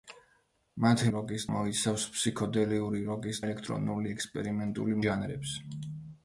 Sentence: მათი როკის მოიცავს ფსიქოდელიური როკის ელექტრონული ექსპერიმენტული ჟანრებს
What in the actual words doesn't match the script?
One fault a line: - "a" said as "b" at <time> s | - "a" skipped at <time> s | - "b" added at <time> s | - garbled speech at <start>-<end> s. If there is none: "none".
none